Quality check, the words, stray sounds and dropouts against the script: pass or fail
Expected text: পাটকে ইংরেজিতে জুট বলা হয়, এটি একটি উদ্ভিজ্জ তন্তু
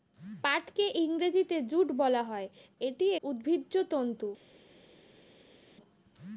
fail